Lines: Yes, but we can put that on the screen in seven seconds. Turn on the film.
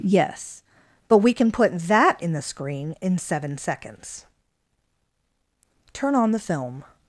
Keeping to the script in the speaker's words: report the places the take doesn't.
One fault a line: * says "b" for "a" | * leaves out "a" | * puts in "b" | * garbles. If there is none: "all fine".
* says "in" for "on"